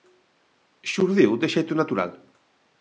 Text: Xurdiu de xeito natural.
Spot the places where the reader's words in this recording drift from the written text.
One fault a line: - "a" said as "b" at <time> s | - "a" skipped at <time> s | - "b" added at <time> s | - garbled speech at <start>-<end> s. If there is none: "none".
none